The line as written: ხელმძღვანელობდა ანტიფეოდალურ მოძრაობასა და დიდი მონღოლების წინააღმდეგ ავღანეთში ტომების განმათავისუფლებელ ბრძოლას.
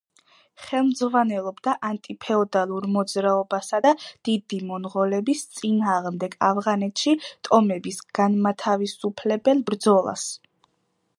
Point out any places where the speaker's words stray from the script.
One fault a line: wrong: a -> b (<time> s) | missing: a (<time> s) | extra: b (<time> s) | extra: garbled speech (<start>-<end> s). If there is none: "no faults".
no faults